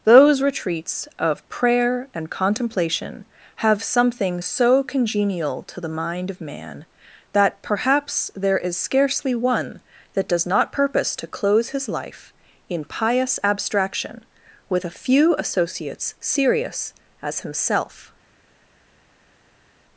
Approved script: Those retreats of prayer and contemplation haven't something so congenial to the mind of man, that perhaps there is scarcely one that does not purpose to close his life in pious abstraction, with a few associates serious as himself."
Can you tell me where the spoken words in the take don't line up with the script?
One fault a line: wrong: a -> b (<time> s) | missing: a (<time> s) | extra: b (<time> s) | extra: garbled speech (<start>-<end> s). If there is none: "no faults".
wrong: haven't -> have (3.6 s)